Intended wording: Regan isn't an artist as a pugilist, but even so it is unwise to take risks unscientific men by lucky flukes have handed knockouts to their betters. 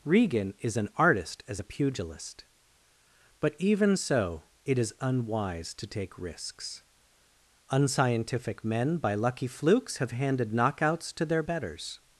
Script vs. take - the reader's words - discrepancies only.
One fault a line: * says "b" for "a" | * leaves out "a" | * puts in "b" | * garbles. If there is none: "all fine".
* says "is" for "isn't"